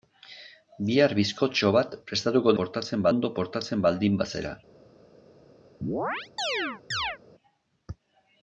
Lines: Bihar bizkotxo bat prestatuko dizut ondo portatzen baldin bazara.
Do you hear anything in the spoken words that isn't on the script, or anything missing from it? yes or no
yes